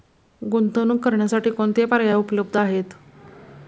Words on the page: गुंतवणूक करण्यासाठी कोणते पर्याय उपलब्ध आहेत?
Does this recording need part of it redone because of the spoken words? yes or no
no